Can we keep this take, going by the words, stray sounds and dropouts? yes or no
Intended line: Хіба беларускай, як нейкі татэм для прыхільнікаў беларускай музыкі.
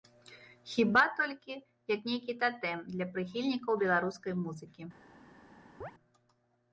no